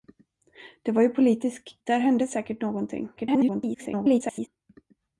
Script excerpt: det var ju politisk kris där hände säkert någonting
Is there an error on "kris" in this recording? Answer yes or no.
yes